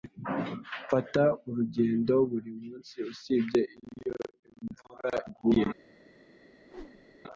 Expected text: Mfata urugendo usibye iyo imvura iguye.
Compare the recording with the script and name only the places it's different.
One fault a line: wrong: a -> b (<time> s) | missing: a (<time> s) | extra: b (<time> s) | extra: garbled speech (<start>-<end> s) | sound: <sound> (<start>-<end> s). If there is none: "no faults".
extra: buri munsi (2.3 s)
sound: whoosh (6.6-7.2 s)